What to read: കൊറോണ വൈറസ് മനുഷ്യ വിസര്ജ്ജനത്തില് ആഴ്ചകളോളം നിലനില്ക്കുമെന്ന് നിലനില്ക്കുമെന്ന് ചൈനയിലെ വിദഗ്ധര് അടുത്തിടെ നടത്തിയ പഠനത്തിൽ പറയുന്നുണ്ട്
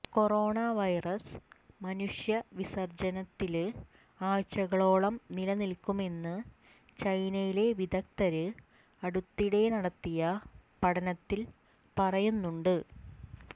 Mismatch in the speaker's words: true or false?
true